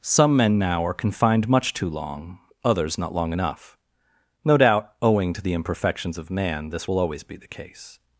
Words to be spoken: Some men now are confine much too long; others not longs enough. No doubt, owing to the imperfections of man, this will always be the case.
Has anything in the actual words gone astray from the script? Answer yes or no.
yes